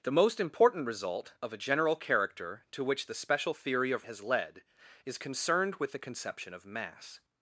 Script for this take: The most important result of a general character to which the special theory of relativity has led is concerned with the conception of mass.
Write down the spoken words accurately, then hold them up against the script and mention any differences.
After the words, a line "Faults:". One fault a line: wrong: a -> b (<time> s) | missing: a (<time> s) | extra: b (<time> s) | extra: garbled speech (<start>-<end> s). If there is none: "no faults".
The most important result of a general character to which the special theory of has led is concerned with the conception of mass.
Faults:
missing: relativity (4.1 s)